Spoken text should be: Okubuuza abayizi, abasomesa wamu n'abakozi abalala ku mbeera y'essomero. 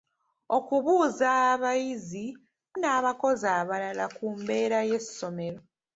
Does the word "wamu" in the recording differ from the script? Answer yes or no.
yes